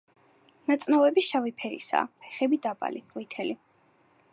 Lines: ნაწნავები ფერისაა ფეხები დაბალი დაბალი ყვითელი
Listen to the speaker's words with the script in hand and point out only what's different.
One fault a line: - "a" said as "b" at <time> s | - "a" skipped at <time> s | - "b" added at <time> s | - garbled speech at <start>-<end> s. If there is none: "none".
- "შავი" added at 1.3 s
- "დაბალი" skipped at 3.1 s